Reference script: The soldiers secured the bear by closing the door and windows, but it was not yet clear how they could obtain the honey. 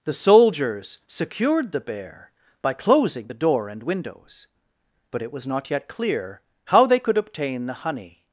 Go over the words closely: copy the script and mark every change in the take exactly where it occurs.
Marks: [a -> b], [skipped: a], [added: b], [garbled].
The soldiers secured the bear by closing the door and windows, but it was not yet clear how they could obtain the honey.